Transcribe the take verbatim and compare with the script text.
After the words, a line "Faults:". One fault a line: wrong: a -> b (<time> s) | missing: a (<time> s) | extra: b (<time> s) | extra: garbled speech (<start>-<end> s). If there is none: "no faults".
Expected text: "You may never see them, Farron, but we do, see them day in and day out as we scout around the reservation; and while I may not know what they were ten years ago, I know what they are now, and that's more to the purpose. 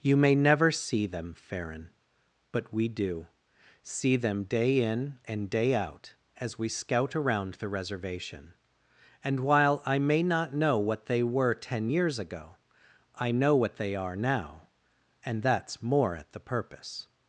"You may never see them, Farron, but we do, see them day in and day out as we scout around the reservation; and while I may not know what they were ten years ago, I know what they are now, and that's more at the purpose.
Faults:
wrong: to -> at (16.2 s)